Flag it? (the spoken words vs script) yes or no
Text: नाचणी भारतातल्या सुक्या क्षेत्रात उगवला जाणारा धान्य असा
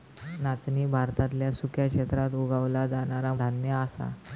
no